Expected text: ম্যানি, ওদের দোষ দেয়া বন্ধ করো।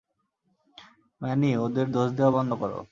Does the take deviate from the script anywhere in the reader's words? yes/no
no